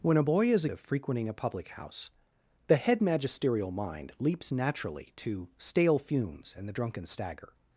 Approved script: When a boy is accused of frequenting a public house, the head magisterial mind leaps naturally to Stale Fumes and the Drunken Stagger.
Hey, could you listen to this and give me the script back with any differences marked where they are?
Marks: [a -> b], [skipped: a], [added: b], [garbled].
When a boy is [skipped: accused] of frequenting a public house, the head magisterial mind leaps naturally to Stale Fumes and the Drunken Stagger.